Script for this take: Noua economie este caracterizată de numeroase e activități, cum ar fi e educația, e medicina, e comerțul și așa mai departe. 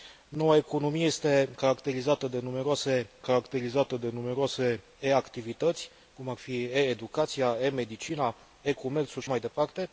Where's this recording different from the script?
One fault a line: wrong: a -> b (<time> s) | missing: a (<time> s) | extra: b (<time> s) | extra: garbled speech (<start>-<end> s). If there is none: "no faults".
extra: caracterizată de numeroase (3.2 s)
missing: așa (9.3 s)